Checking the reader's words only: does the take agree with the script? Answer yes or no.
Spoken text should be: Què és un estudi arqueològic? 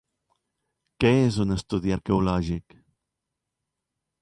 yes